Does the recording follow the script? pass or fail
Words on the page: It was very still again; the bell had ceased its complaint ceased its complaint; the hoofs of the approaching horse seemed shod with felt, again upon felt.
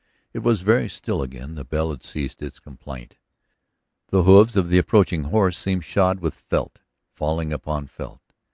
fail